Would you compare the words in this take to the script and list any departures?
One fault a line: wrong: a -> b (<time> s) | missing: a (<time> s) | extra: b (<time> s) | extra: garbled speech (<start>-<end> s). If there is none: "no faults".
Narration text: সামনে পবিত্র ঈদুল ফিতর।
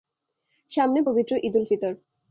no faults